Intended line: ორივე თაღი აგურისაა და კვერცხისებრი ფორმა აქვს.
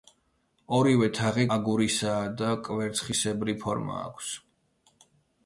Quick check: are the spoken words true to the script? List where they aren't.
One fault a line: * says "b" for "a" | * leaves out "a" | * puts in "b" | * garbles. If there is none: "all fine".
all fine